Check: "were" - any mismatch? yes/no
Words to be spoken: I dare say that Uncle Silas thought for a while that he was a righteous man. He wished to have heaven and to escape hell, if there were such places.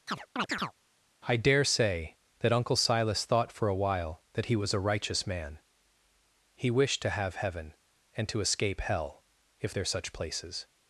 yes